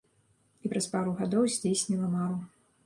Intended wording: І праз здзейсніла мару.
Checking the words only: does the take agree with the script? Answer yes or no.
no